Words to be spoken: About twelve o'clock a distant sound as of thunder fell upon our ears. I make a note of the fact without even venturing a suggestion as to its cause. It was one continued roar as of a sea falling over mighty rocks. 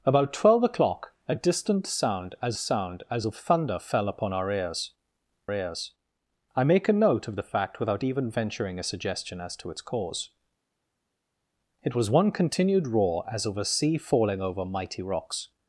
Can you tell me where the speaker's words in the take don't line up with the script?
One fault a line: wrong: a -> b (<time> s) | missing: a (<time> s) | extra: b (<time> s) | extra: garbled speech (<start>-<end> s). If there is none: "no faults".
extra: sound as (2.5 s)
extra: ears (5.5 s)